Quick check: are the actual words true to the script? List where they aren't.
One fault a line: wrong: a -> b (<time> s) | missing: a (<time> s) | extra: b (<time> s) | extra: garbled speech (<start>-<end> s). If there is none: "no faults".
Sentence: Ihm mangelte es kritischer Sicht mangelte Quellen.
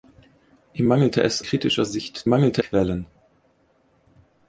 no faults